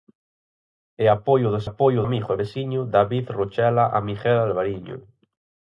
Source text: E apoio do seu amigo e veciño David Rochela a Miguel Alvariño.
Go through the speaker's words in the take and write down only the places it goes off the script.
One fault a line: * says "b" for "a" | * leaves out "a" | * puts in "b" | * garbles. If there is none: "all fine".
* says "apoio" for "seu"